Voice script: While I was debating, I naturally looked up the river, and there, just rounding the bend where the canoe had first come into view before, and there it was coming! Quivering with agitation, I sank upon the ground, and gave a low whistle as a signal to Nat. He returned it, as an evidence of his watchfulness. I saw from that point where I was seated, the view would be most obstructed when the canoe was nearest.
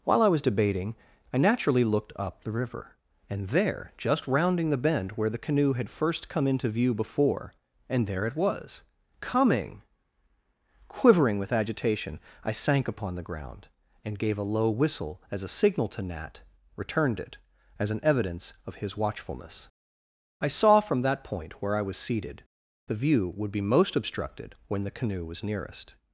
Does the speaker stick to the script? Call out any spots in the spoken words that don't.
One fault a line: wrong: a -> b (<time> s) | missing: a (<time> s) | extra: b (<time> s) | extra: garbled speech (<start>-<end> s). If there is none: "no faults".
missing: He (16.4 s)